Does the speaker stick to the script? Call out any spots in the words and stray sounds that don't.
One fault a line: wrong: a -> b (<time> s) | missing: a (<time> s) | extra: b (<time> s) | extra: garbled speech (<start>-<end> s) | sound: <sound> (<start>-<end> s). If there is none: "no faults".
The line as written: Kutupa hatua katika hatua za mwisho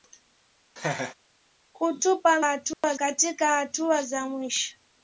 sound: laugh (0.8-1.1 s)
sound: dropout (2.7-2.8 s)